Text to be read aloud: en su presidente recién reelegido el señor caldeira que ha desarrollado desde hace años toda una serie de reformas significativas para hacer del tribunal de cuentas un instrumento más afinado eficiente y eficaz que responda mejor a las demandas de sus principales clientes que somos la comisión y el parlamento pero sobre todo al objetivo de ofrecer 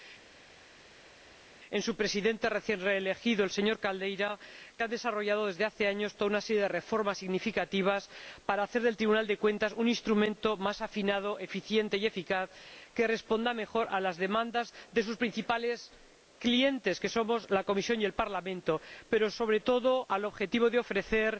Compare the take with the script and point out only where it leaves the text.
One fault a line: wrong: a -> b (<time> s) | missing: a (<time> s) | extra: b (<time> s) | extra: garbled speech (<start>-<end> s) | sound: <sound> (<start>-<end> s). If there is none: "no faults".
no faults